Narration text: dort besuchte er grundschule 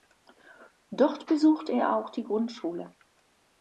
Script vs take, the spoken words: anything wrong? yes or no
yes